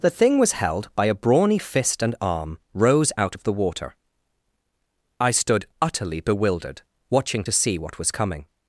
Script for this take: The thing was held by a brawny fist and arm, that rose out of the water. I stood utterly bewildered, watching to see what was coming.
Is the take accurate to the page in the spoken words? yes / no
no